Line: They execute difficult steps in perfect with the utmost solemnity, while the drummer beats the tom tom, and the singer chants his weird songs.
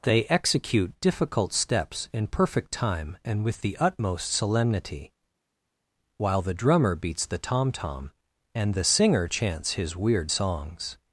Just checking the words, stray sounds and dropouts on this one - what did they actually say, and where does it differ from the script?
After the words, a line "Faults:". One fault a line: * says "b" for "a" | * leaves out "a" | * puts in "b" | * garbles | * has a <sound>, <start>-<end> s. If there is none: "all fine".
They execute difficult steps in perfect time and with the utmost solemnity, while the drummer beats the tom tom, and the singer chants his weird songs.
Faults:
* puts in "time and"